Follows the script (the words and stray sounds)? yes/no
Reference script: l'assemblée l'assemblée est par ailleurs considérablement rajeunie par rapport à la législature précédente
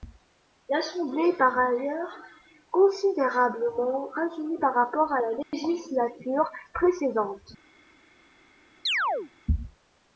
no